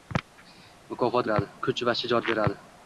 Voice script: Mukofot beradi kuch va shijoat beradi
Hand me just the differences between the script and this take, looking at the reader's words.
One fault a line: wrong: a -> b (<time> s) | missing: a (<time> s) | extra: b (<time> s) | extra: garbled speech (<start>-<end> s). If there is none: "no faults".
no faults